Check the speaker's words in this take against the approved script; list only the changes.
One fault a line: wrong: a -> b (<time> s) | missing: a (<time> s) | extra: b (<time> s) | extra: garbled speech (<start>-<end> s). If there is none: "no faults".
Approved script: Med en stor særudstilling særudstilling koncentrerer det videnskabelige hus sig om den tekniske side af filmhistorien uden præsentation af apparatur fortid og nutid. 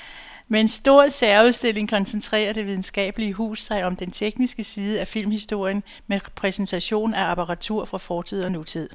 missing: særudstilling (1.9 s)
wrong: uden -> med (6.1 s)
extra: fra (7.8 s)